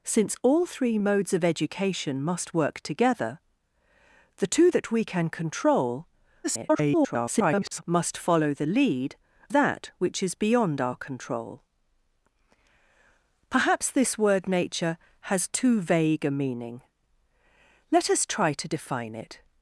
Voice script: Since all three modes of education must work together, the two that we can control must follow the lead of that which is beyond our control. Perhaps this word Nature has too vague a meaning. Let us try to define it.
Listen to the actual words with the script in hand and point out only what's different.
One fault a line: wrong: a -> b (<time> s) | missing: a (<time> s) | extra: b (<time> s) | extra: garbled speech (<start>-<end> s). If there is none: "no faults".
extra: garbled speech (6.4-7.8 s)
missing: of (9.2 s)